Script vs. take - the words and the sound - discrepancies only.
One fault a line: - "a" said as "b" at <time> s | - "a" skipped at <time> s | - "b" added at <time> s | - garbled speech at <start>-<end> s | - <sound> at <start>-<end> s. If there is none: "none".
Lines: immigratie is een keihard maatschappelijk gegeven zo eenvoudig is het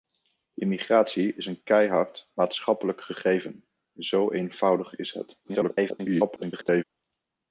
- garbled speech at 5.4-6.8 s